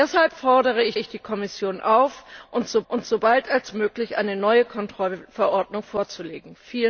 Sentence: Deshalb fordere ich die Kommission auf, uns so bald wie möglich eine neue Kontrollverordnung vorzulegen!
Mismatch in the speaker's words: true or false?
true